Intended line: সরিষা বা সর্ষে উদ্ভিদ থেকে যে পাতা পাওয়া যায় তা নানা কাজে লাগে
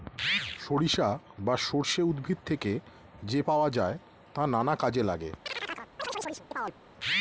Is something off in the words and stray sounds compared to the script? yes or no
yes